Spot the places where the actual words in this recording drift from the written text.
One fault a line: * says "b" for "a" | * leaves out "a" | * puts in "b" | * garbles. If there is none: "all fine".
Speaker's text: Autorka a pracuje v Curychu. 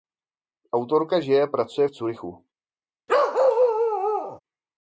* puts in "žije"